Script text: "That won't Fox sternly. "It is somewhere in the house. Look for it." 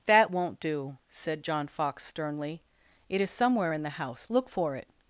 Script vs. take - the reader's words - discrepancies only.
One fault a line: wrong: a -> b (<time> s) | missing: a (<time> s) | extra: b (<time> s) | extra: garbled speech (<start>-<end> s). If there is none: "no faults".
extra: do said John (0.6 s)